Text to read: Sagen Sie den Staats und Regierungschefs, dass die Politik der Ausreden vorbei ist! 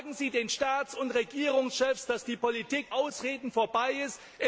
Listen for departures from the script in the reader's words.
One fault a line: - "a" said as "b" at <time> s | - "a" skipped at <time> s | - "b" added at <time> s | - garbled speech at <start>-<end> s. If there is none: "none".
- "der" skipped at 2.9 s